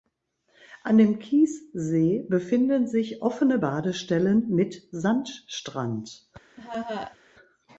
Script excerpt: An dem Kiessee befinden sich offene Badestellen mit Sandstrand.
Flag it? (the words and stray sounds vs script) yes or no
yes